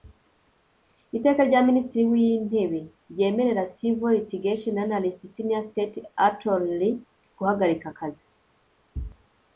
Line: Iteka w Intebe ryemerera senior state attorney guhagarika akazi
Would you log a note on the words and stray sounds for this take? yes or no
yes